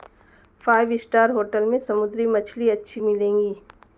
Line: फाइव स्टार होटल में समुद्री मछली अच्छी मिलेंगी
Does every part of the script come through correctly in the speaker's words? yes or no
yes